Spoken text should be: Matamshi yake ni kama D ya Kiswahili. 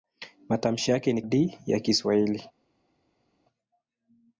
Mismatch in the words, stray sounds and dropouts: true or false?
true